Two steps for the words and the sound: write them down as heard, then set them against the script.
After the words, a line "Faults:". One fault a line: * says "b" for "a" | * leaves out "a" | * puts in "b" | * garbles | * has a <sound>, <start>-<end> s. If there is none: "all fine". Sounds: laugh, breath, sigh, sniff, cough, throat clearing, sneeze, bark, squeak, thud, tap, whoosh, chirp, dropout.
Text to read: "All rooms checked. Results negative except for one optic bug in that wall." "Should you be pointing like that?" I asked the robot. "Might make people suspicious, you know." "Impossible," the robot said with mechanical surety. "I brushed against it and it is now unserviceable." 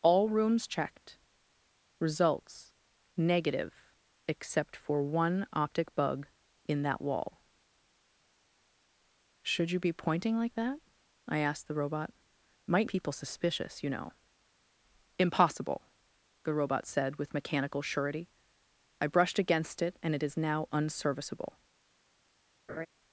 "All rooms checked. Results negative except for one optic bug in that wall." "Should you be pointing like that?" I asked the robot. "Might people suspicious, you know." "Impossible," the robot said with mechanical surety. "I brushed against it and it is now unserviceable."
Faults:
* leaves out "make"
* has a laugh, 22.7-22.9 s